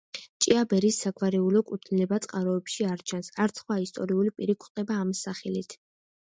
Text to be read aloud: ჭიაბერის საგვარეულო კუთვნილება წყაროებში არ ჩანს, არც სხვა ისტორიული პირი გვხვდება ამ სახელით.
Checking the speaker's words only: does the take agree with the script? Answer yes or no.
yes